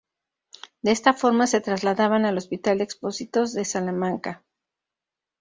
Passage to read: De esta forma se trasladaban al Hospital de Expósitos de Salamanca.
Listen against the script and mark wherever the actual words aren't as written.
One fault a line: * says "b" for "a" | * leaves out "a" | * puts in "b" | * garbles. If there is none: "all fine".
all fine